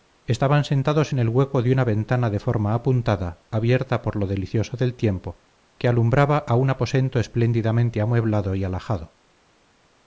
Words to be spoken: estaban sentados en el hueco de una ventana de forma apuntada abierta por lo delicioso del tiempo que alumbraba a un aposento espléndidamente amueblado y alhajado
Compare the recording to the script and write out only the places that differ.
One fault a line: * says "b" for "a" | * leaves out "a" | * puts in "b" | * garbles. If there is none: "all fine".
all fine